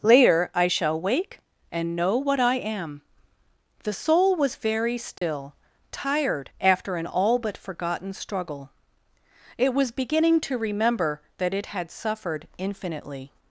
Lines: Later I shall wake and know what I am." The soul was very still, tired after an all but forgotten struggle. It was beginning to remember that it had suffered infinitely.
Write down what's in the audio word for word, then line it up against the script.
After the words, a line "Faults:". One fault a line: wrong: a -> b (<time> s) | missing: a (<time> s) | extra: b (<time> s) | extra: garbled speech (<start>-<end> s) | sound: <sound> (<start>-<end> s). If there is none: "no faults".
Later I shall wake and know what I am." The soul was very still, tired after an all but forgotten struggle. It was beginning to remember that it had suffered infinitely.
Faults:
sound: dropout (5.2-5.2 s)